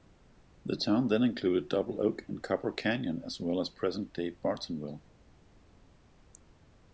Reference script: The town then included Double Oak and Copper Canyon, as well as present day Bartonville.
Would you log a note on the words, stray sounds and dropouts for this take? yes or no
no